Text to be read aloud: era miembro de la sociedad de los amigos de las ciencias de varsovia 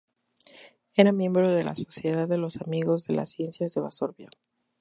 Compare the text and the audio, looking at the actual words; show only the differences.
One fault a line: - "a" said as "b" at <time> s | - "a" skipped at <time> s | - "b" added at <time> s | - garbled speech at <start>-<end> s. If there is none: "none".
none